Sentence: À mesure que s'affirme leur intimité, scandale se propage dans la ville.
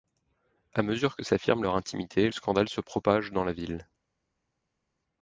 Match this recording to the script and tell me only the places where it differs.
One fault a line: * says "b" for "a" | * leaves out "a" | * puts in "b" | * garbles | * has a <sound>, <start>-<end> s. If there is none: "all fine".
all fine